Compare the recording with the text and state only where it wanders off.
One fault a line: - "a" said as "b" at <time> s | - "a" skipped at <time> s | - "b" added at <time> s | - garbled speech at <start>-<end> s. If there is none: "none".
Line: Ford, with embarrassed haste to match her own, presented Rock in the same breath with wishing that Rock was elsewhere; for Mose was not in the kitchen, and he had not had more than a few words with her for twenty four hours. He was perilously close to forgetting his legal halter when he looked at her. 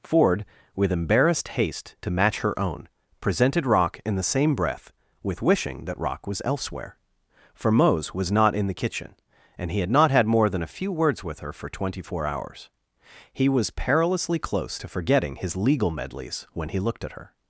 - "halter" said as "medleys" at 15.9 s